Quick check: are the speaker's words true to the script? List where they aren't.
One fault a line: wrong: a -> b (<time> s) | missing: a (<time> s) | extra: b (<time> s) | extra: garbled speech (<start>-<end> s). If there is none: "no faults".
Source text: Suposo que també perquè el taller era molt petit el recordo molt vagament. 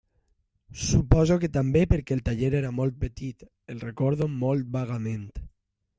no faults